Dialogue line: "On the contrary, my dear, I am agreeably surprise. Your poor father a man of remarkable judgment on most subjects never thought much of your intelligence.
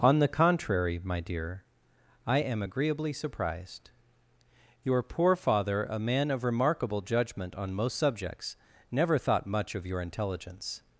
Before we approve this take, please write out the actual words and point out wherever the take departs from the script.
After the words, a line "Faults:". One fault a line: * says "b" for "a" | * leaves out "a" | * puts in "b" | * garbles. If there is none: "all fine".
"On the contrary, my dear, I am agreeably surprised. Your poor father a man of remarkable judgment on most subjects never thought much of your intelligence.
Faults:
* says "surprised" for "surprise"